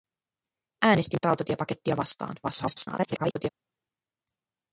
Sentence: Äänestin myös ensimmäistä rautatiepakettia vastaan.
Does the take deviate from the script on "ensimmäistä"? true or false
true